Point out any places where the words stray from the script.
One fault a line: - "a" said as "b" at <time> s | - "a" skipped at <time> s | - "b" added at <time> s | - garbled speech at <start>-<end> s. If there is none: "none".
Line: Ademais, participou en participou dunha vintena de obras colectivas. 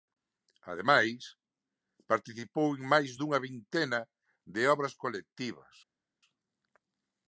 - "participou" said as "máis" at 2.9 s